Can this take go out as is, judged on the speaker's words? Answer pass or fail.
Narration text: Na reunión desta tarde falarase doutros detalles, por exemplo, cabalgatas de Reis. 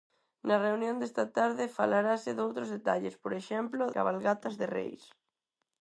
pass